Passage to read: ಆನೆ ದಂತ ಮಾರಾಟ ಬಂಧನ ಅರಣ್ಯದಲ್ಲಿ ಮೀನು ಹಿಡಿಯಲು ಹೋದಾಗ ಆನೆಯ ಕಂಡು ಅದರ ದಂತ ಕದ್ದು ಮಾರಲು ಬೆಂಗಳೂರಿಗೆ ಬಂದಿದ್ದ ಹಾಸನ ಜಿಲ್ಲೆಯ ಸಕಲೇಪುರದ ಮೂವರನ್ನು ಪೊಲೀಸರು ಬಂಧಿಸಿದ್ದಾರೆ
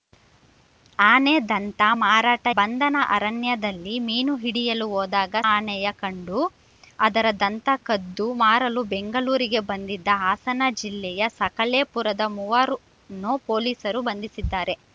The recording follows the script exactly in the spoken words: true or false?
true